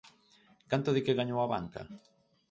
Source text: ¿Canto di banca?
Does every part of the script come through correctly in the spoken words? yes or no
no